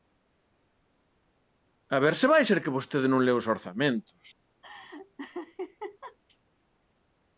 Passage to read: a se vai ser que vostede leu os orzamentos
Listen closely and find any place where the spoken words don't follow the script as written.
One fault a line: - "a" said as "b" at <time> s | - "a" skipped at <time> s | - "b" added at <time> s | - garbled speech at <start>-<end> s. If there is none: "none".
- "ver" added at 2.0 s
- "non" added at 3.1 s